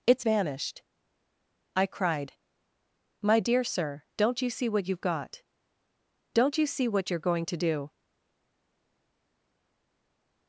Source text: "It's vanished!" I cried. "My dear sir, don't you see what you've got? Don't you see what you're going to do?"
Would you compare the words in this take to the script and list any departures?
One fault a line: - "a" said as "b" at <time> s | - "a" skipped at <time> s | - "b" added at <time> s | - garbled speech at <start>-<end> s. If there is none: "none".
none